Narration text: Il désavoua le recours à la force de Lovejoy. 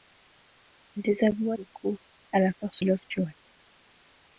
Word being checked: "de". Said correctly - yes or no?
no